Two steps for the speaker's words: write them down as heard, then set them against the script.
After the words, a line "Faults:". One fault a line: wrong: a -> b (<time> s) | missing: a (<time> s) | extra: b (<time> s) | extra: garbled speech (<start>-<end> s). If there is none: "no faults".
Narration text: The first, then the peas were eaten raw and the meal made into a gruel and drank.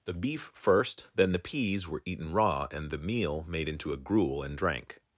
The beef first, then the peas were eaten raw and the meal made into a gruel and drank.
Faults:
extra: beef (0.1 s)